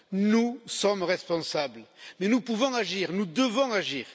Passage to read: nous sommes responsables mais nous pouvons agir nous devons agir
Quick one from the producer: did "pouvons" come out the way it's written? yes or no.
yes